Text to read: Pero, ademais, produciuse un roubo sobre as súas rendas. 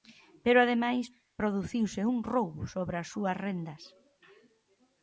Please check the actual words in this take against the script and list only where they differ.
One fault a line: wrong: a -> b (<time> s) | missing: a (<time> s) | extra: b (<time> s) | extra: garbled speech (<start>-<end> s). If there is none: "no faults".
no faults